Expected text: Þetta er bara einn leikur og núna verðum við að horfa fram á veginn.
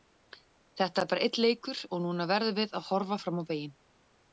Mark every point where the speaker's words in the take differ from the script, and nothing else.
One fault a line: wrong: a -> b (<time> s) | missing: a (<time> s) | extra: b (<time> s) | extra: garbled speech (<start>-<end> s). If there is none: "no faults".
no faults